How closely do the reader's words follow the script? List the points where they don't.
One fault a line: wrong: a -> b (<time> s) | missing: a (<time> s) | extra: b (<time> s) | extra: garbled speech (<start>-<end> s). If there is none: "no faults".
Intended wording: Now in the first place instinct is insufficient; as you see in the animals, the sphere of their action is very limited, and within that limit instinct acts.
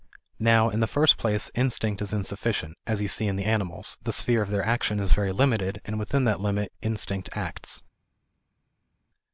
no faults